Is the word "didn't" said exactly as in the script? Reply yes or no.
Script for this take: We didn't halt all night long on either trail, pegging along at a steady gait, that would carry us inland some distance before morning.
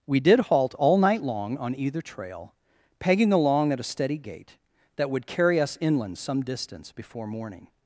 no